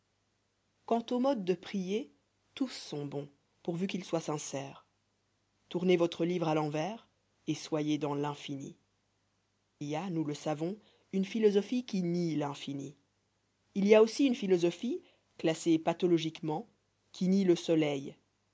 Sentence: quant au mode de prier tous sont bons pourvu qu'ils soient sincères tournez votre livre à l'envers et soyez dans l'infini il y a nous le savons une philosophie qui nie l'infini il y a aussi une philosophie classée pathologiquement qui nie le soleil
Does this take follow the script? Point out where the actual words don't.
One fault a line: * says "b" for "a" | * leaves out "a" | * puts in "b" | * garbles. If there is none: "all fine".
* leaves out "il"